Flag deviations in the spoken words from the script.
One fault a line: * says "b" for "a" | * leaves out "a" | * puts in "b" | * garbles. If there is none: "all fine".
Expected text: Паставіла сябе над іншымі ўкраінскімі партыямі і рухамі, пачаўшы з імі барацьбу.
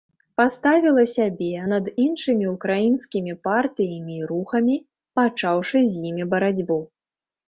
all fine